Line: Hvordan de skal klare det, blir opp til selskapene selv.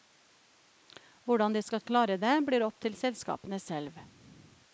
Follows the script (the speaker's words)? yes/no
yes